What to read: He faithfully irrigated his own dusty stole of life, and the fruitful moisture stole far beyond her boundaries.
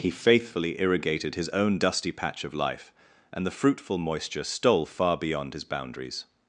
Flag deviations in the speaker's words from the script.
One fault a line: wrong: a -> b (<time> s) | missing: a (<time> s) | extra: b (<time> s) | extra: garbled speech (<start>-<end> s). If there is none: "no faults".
wrong: stole -> patch (2.1 s)
wrong: her -> his (5.5 s)